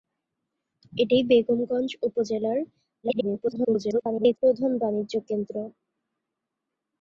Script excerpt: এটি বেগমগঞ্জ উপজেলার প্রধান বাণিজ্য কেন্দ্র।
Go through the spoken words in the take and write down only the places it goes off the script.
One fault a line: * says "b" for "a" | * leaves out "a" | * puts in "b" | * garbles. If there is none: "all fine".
* garbles